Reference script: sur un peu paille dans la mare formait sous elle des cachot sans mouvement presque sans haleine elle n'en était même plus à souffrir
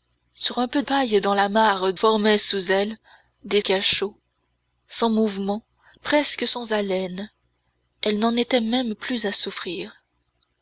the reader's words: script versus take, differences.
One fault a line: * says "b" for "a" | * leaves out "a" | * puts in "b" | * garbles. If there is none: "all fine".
all fine